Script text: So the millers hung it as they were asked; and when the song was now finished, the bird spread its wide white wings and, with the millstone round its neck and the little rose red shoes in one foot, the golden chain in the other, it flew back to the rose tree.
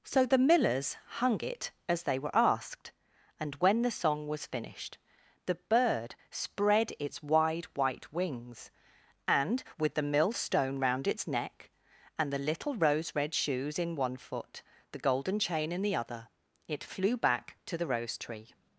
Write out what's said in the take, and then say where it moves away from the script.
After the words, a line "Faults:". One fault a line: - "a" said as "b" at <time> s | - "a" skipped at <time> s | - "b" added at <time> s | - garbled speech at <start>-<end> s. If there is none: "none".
So the millers hung it as they were asked; and when the song was finished, the bird spread its wide white wings and, with the millstone round its neck and the little rose red shoes in one foot, the golden chain in the other, it flew back to the rose tree.
Faults:
- "now" skipped at 4.5 s